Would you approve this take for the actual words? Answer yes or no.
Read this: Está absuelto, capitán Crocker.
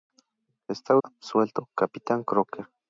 yes